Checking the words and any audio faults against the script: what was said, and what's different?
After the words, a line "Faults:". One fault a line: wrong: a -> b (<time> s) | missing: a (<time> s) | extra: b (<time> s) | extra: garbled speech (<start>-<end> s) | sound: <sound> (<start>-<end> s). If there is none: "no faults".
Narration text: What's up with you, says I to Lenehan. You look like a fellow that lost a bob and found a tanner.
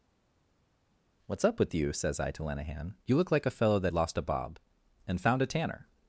What's up with you, says I to Lenehan. You look like a fellow that lost a bob and found a tanner.
Faults:
no faults